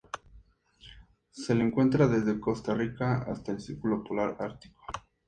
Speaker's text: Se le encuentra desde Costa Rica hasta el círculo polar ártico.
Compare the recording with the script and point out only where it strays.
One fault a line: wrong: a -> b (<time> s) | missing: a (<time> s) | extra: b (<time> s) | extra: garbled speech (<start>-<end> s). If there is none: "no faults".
no faults